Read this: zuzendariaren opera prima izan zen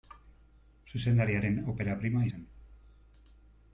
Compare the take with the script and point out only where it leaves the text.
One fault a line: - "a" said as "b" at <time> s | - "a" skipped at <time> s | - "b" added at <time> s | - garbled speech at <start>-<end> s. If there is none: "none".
- "izan" skipped at 2.2 s